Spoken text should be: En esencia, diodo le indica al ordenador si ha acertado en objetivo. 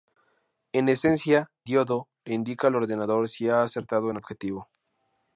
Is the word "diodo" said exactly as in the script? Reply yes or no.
yes